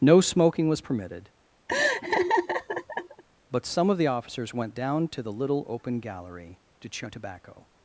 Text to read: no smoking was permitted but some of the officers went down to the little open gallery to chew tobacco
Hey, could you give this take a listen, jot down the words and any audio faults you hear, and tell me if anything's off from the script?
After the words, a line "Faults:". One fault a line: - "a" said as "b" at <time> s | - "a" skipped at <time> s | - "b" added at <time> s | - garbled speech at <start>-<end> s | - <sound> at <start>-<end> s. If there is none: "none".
no smoking was permitted but some of the officers went down to the little open gallery to chew tobacco
Faults:
- laugh at 1.7-3.2 s